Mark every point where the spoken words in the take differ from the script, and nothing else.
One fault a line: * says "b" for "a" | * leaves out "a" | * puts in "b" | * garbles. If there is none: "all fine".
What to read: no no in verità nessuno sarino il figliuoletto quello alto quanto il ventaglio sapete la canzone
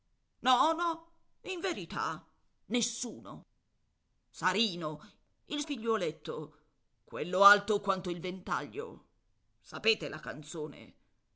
all fine